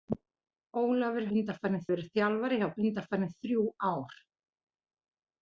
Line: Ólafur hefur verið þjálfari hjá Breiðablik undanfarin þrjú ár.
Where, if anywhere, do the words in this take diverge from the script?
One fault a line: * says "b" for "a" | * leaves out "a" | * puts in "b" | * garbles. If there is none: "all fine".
* says "undanfarin" for "hefur"
* leaves out "Breiðablik"